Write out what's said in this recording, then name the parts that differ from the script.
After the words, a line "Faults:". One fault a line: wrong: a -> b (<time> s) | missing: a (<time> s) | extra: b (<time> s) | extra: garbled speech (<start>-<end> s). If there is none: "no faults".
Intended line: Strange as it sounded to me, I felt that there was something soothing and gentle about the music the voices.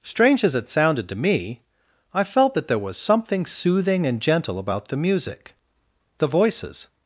Strange as it sounded to me, I felt that there was something soothing and gentle about the music the voices.
Faults:
no faults